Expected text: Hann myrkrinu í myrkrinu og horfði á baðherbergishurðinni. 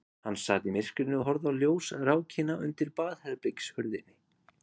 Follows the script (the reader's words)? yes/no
no